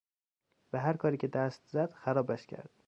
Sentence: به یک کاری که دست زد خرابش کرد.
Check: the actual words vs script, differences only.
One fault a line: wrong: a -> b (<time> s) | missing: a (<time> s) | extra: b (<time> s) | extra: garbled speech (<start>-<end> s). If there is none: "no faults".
wrong: یک -> هر (0.8 s)